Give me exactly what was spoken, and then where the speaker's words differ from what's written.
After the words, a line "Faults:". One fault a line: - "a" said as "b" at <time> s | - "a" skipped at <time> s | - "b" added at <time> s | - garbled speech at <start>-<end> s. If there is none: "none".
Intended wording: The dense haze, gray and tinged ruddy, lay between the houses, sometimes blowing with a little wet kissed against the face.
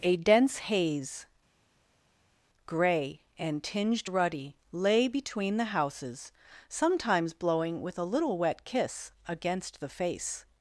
A dense haze, gray and tinged ruddy, lay between the houses, sometimes blowing with a little wet kiss against the face.
Faults:
- "The" said as "A" at 0.0 s
- "kissed" said as "kiss" at 8.6 s